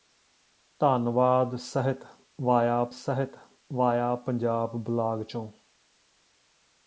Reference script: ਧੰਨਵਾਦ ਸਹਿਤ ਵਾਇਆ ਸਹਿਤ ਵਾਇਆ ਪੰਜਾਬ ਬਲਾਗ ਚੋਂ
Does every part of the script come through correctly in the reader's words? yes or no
yes